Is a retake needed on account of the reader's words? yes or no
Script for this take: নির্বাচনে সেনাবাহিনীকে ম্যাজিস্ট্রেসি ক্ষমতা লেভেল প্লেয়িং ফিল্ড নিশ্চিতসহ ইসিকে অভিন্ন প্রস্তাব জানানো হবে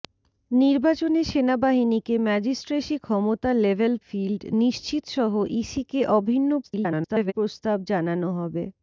yes